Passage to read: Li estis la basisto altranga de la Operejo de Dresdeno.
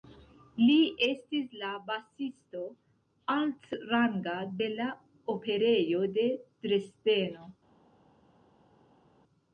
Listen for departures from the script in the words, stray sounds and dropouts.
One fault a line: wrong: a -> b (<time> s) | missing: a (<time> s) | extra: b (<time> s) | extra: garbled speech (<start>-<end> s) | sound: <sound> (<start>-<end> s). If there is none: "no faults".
no faults